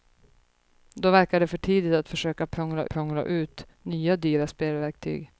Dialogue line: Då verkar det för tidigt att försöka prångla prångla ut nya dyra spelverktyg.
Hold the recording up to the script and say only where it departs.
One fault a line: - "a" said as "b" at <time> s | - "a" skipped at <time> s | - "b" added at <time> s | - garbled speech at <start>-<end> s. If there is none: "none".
none